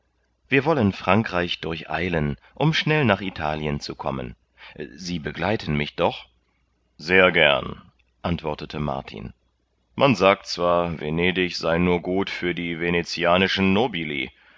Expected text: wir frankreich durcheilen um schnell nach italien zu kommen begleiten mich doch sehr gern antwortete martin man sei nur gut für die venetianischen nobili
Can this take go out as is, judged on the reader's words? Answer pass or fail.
fail